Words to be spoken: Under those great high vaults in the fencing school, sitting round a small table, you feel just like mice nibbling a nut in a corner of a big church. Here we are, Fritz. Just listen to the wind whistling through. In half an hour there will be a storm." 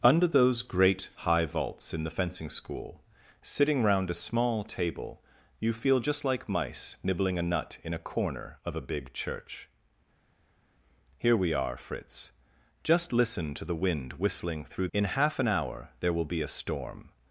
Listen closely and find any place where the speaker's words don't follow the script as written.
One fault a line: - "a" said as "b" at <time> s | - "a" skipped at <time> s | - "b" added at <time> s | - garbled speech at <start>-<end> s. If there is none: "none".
none